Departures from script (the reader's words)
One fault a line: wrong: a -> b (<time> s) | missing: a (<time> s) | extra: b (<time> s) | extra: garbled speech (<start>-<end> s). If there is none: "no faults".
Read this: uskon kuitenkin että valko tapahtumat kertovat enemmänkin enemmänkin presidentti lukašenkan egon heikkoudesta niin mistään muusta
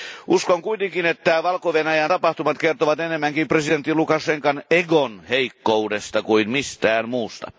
extra: venäjän (1.7 s)
missing: enemmänkin (3.5 s)
wrong: niin -> kuin (6.2 s)